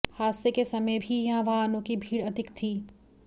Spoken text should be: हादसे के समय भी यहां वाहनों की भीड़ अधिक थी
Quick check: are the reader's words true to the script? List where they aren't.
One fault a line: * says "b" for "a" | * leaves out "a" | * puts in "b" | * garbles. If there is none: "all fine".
all fine